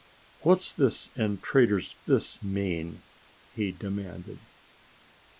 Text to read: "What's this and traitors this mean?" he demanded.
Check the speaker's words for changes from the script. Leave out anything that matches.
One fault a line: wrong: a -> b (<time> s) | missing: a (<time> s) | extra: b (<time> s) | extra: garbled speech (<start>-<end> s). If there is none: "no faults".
no faults